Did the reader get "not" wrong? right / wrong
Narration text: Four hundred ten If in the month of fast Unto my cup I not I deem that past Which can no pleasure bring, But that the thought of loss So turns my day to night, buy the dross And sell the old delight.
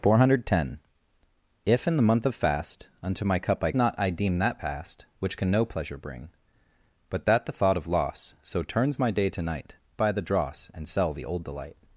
right